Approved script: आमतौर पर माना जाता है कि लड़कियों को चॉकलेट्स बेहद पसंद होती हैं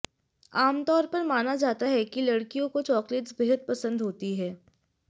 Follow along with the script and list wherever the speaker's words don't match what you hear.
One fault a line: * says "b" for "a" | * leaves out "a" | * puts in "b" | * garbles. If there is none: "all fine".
all fine